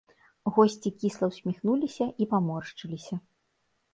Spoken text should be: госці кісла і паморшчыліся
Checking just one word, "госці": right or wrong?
right